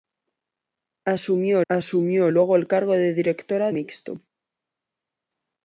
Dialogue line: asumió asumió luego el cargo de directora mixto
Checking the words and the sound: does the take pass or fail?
pass